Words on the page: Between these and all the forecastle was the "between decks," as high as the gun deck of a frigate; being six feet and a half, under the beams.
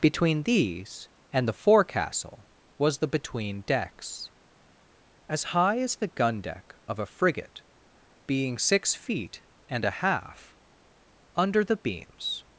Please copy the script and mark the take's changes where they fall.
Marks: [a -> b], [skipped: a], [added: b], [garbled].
Between these and [skipped: all] the forecastle was the "between decks," as high as the gun deck of a frigate; being six feet and a half, under the beams.